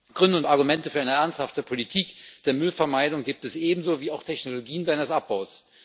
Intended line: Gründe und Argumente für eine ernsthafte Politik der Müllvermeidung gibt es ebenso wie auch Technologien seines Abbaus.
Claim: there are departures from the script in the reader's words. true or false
false